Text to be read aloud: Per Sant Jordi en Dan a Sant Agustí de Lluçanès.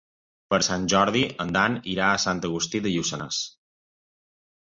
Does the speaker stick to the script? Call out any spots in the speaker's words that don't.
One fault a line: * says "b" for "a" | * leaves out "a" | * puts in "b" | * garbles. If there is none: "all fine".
* puts in "irà"